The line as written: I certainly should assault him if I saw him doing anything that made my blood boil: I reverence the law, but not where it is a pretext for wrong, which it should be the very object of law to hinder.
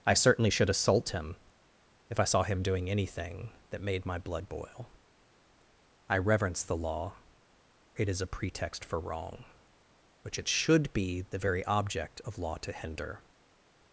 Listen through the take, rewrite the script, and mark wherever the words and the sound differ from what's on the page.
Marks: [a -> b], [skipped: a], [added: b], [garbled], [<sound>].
I certainly should assault him if I saw him doing anything that made my blood boil: I reverence the law, [skipped: but not where] it is a pretext for wrong, which it should be the very object of law to hinder.